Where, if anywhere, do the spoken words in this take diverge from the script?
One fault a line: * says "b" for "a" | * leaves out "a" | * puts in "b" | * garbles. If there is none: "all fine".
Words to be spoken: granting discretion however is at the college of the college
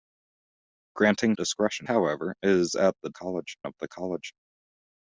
all fine